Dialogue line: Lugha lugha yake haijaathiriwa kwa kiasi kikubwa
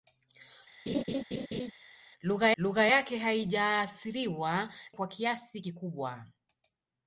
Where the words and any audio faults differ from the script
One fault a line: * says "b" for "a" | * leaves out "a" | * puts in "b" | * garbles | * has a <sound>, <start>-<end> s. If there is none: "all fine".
* has a laugh, 0.9-1.7 s